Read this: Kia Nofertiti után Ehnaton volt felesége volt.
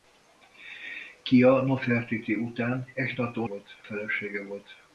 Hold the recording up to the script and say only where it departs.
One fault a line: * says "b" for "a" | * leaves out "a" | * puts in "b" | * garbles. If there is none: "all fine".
all fine